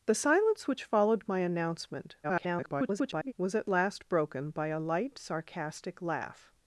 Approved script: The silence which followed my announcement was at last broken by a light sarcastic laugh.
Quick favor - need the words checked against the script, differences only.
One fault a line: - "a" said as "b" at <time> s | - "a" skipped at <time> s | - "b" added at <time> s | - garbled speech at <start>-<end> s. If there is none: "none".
- garbled speech at 2.2-3.3 s